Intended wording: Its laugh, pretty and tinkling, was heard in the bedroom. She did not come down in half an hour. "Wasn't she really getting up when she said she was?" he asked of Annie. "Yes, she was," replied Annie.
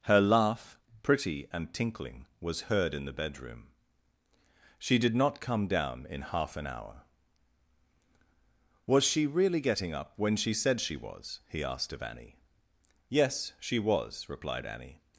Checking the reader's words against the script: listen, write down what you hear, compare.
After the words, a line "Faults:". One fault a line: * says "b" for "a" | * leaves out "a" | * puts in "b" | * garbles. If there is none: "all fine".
Her laugh, pretty and tinkling, was heard in the bedroom. She did not come down in half an hour. "Was she really getting up when she said she was?" he asked of Annie. "Yes, she was," replied Annie.
Faults:
* says "Her" for "Its"
* says "Was" for "Wasn't"